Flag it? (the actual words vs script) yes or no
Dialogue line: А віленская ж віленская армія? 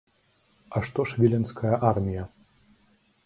yes